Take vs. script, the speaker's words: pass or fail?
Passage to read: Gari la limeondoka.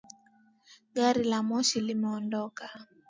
fail